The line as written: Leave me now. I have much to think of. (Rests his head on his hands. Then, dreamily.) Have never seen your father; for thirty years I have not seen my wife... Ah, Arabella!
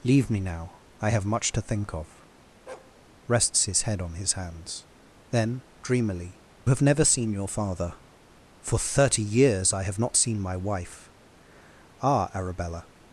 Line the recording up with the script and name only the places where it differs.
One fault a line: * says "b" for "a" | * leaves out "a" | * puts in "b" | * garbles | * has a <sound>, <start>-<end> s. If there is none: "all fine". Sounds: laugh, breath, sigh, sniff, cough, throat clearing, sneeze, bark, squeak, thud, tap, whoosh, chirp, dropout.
* has a bark, 2.7-2.9 s